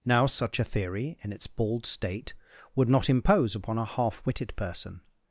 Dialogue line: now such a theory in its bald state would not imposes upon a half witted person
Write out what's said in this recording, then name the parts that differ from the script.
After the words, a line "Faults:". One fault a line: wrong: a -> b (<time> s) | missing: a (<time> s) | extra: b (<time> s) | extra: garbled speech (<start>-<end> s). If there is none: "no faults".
now such a theory in its bald state would not impose upon a half witted person
Faults:
wrong: imposes -> impose (3.1 s)